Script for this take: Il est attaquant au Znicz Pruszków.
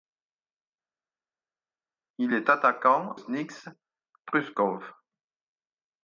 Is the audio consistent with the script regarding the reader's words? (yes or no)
no